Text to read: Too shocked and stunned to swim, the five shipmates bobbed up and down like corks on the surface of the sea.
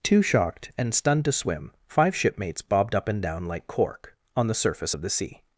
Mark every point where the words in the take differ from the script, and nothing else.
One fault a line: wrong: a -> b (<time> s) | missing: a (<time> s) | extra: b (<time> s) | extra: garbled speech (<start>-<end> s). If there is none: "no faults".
missing: the (1.7 s)
wrong: corks -> cork (3.7 s)